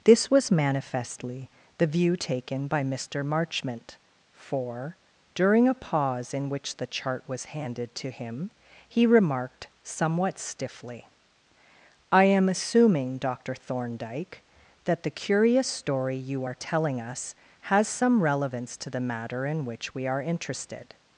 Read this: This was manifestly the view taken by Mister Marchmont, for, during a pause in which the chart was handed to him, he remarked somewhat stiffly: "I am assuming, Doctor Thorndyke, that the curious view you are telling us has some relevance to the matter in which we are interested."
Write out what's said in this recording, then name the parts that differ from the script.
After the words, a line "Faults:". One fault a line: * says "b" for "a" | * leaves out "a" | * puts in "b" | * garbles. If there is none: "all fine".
This was manifestly the view taken by Mister Marchmont, for, during a pause in which the chart was handed to him, he remarked somewhat stiffly: "I am assuming, Doctor Thorndyke, that the curious story you are telling us has some relevance to the matter in which we are interested."
Faults:
* says "story" for "view"